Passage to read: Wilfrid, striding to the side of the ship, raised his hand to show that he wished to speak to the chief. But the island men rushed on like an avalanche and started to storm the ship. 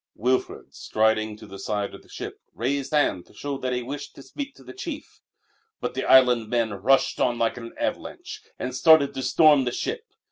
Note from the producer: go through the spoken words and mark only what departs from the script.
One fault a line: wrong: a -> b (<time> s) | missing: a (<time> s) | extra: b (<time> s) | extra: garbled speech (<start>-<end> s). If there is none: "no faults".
missing: his (3.0 s)